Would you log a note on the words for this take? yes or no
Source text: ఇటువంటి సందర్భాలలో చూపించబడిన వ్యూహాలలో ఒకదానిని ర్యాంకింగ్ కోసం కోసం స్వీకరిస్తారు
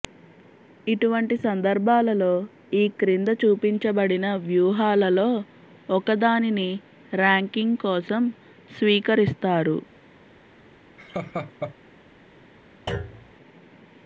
yes